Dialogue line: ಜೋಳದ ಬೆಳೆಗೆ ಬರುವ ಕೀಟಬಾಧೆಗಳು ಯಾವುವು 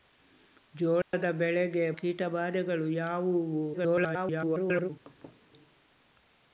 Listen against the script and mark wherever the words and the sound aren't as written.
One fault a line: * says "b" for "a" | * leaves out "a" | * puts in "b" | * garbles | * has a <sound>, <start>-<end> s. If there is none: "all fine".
* has a dropout, 1.0-1.1 s
* leaves out "ಬರುವ"
* garbles
* has a laugh, 5.1-5.4 s